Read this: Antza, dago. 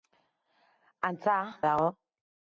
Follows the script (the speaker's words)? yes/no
yes